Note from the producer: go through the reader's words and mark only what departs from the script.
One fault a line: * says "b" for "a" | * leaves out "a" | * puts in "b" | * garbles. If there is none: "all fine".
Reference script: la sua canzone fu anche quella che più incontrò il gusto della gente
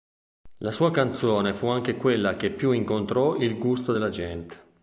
all fine